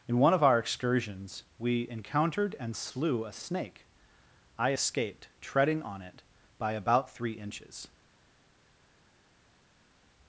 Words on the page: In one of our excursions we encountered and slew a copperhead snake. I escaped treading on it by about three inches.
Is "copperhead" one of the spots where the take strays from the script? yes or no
yes